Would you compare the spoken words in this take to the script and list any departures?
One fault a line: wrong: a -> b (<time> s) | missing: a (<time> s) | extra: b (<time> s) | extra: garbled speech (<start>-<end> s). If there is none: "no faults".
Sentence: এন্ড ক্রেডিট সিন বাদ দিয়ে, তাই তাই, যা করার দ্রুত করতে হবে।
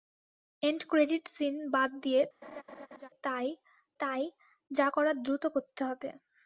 no faults